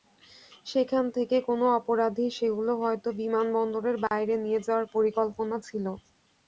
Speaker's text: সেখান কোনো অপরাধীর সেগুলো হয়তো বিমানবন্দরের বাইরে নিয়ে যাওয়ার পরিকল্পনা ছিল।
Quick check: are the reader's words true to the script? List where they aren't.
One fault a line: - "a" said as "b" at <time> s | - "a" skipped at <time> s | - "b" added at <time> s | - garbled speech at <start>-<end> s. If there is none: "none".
- "থেকে" added at 1.1 s